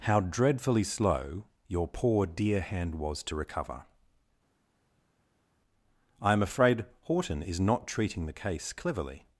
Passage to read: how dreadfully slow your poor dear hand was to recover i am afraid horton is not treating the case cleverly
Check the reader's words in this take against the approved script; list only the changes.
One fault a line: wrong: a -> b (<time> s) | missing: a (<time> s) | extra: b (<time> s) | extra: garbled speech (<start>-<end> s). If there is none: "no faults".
no faults